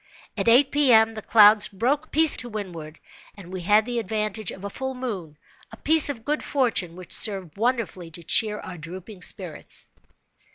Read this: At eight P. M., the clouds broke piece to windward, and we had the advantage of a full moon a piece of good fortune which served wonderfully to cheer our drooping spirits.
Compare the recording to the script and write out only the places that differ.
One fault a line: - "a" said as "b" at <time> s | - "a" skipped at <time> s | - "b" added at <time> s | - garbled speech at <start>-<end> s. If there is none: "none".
none